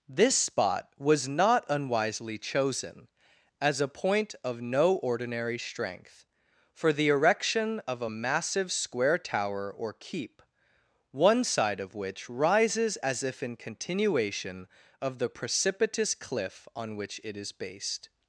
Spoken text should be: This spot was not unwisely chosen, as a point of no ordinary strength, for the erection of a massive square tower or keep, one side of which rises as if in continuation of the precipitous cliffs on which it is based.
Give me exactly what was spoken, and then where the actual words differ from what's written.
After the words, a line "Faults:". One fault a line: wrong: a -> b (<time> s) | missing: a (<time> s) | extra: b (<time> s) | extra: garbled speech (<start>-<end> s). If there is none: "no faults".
This spot was not unwisely chosen, as a point of no ordinary strength, for the erection of a massive square tower or keep, one side of which rises as if in continuation of the precipitous cliff on which it is based.
Faults:
wrong: cliffs -> cliff (16.1 s)